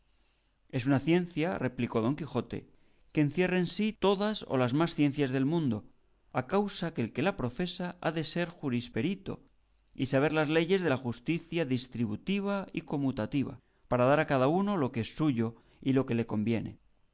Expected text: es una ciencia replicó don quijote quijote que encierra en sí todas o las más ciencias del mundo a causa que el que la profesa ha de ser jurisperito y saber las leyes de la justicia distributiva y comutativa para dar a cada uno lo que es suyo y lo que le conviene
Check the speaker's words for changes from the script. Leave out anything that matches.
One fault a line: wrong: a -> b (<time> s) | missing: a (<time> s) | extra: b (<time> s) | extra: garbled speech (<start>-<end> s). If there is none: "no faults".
missing: quijote (2.6 s)